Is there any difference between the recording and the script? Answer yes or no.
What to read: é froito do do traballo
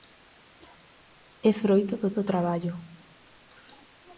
no